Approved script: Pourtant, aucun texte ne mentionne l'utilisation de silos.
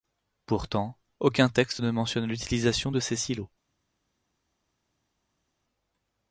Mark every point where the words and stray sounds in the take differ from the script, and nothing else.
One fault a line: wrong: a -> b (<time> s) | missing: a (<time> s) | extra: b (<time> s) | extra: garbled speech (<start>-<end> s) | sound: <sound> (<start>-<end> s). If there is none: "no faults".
extra: ces (3.0 s)